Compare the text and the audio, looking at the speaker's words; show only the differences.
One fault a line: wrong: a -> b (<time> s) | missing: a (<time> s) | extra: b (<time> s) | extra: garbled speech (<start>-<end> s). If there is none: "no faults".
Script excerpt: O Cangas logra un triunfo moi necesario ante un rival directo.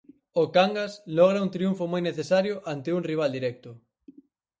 no faults